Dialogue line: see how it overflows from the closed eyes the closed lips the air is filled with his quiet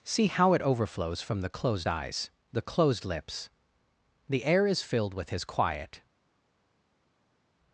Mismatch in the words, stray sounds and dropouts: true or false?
false